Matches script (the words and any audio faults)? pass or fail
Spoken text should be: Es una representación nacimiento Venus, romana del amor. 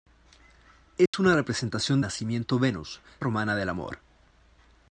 fail